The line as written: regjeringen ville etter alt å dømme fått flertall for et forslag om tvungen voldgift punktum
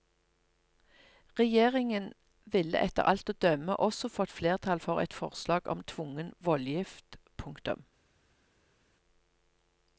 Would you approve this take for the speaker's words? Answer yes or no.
no